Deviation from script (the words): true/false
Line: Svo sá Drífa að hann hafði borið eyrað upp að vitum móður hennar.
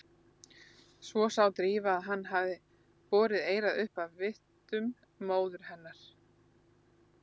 false